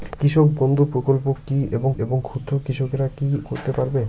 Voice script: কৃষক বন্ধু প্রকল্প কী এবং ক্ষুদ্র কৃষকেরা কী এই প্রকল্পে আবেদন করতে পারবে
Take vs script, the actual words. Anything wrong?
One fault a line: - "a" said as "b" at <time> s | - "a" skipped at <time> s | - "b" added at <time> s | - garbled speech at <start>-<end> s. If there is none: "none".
- "এবং" added at 2.0 s
- "এই প্রকল্পে আবেদন" skipped at 3.3 s